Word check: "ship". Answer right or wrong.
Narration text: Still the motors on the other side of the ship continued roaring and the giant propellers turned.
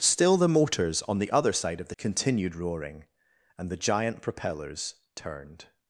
wrong